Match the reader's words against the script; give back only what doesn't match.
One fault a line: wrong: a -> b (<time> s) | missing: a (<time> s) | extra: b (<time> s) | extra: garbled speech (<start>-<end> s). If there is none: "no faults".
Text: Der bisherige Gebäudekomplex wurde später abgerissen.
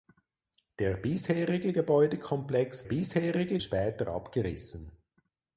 wrong: wurde -> bisherige (2.8 s)